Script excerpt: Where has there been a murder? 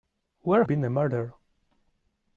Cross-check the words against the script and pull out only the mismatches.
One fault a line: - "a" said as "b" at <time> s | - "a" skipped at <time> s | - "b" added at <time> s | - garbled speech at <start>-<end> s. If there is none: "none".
- "has there" skipped at 0.6 s